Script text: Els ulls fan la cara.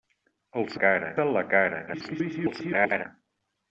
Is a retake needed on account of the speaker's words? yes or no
yes